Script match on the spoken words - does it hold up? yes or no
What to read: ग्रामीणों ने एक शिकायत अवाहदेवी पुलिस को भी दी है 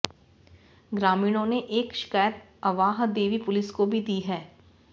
yes